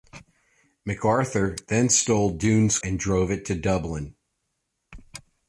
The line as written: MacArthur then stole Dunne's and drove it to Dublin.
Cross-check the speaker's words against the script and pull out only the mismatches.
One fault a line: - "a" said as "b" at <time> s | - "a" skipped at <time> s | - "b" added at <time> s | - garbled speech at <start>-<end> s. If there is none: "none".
none